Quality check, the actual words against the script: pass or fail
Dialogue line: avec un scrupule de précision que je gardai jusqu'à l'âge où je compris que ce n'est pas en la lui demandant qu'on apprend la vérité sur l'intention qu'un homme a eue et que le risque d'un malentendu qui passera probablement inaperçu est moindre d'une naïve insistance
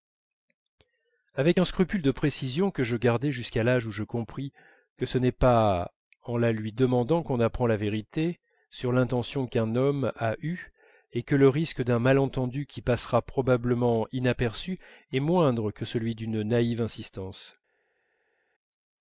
fail